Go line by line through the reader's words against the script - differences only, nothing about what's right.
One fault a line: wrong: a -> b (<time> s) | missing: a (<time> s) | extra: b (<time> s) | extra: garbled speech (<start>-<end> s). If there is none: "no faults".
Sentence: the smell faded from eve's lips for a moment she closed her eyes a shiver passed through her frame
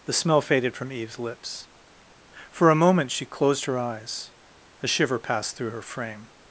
no faults